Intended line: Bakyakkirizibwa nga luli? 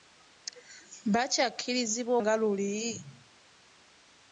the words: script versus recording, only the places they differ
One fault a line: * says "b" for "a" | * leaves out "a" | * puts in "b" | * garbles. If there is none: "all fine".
all fine